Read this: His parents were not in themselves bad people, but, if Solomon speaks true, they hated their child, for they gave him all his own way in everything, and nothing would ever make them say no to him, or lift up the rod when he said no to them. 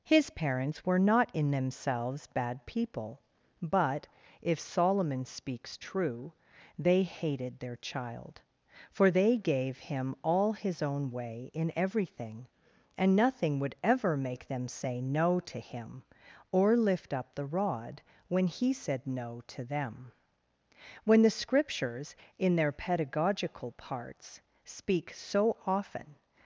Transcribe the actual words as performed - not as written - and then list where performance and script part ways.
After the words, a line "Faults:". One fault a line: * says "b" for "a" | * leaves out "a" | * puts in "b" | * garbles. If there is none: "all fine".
His parents were not in themselves bad people, but, if Solomon speaks true, they hated their child, for they gave him all his own way in everything, and nothing would ever make them say no to him, or lift up the rod when he said no to them. When the Scriptures, in their pedagogical parts, speak so often
Faults:
* puts in "When the Scriptures in their pedagogical parts speak so often"